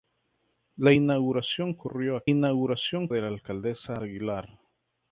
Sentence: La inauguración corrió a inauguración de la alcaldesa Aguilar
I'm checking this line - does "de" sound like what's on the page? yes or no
yes